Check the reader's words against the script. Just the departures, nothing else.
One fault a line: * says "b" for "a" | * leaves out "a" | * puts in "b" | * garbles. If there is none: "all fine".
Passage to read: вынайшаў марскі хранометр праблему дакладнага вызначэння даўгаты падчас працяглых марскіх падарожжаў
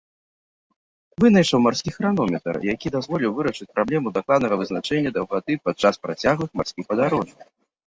* puts in "які дазволіў вырашыць"